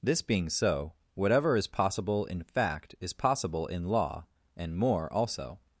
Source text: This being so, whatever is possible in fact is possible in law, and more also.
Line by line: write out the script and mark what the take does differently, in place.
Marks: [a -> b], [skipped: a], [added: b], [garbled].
This being so, whatever is possible in fact is possible in law, and more also.